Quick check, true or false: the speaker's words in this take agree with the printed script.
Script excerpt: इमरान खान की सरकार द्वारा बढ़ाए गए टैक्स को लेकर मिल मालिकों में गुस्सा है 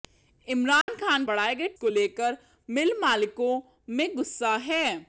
false